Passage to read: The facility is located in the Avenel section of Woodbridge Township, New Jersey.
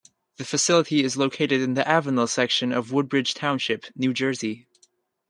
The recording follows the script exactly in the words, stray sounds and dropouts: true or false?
true